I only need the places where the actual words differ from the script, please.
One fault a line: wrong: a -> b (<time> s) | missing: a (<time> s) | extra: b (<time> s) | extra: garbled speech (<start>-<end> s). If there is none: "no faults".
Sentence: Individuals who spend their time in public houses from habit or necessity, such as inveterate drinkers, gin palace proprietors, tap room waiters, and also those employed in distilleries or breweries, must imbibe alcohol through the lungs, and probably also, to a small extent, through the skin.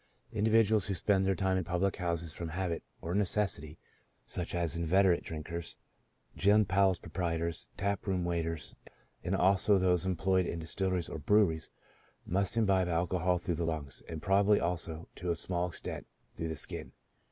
no faults